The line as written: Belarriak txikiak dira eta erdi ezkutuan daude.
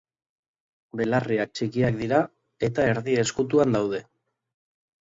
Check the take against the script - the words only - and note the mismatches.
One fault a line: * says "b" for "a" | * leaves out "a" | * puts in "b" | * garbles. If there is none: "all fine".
all fine